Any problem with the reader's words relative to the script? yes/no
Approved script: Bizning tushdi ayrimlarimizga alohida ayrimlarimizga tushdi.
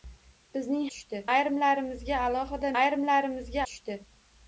no